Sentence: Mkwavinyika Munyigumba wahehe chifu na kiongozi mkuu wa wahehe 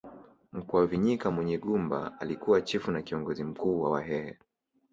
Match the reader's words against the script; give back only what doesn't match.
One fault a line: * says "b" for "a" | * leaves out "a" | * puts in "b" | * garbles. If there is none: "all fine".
* says "alikuwa" for "wahehe"